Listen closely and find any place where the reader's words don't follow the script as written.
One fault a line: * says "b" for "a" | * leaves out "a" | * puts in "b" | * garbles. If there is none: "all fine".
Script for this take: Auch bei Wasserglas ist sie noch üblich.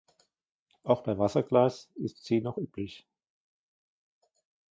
all fine